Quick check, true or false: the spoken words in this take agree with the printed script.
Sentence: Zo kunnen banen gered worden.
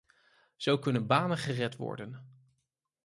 true